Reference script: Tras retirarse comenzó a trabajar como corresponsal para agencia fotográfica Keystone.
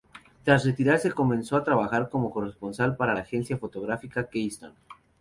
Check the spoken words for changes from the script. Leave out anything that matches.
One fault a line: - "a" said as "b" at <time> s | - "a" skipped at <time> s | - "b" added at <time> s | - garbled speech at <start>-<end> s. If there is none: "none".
none